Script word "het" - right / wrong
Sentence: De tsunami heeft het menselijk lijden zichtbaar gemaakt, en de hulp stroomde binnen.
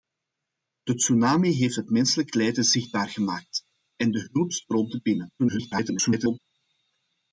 right